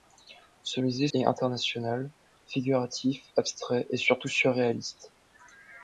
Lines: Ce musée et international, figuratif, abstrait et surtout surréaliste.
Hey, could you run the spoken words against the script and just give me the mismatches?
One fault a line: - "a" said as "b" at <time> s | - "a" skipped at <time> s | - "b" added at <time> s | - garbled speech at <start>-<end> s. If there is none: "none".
none